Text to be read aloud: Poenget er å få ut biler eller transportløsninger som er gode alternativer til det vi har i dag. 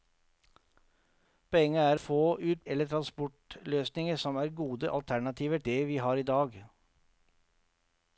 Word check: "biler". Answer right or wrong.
wrong